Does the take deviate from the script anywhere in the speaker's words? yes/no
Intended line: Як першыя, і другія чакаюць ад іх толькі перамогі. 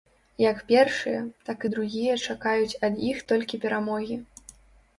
yes